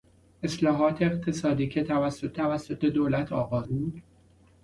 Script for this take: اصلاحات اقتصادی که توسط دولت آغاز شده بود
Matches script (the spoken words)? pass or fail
fail